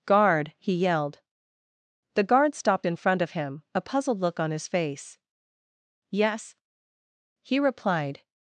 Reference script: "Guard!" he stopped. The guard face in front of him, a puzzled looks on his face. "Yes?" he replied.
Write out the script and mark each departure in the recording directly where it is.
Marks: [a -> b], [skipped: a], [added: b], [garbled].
"Guard!" he [stopped. -> yelled] The guard [face -> stopped] in front of him, a puzzled [looks -> look] on his face. "Yes?" he replied.